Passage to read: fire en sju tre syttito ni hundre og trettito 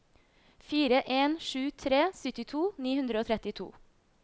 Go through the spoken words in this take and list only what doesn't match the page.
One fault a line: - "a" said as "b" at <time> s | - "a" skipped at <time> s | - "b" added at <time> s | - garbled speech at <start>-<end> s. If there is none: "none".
none